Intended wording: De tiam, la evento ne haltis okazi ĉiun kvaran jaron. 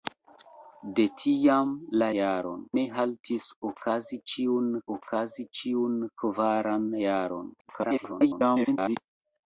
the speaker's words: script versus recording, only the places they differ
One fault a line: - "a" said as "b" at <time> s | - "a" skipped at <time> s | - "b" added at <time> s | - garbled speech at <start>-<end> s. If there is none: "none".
- "evento" said as "jaron" at 2.2 s
- "okazi ĉiun" added at 5.0 s
- garbled speech at 7.6-9.0 s